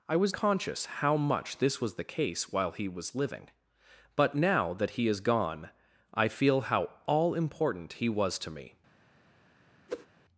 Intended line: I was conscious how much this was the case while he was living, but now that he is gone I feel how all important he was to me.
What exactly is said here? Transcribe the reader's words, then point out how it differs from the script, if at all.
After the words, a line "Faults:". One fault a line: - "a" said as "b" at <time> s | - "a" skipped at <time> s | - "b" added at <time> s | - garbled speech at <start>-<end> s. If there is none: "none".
I was conscious how much this was the case while he was living, but now that he is gone I feel how all important he was to me.
Faults:
none